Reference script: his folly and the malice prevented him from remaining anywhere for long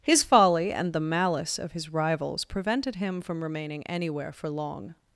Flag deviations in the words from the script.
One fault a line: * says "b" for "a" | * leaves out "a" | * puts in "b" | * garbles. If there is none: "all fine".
* puts in "of his rivals"